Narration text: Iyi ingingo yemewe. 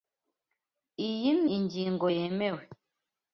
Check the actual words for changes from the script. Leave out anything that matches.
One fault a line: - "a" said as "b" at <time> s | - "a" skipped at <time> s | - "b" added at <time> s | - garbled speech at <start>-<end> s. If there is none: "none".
none